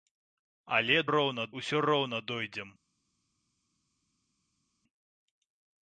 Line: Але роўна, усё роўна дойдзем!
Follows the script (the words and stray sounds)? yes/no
yes